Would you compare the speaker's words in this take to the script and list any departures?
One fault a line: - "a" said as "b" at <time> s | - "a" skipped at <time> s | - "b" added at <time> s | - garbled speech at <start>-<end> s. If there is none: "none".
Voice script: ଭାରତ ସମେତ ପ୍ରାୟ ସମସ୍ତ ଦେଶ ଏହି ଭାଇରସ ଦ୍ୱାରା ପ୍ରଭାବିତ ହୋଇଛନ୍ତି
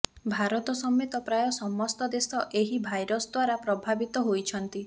none